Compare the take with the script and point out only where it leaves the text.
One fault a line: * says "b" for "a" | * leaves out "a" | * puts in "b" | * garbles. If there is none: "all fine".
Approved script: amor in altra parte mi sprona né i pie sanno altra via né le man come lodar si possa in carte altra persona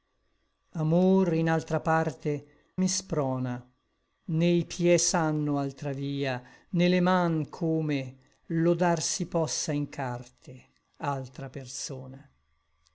all fine